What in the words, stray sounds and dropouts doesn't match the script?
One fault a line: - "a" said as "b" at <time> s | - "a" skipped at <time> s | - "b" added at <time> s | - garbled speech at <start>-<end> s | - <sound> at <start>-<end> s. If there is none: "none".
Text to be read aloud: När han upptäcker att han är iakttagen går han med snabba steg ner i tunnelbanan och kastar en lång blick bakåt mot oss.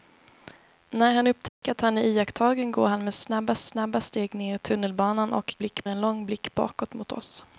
- dropout at 1.5-1.6 s
- "snabba" added at 3.6 s
- "kastar" said as "blick" at 5.6 s